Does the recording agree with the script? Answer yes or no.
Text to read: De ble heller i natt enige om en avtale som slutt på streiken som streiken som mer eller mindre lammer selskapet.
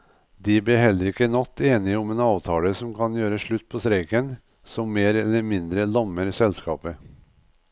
no